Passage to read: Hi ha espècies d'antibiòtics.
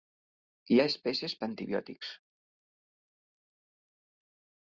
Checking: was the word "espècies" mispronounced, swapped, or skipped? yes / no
no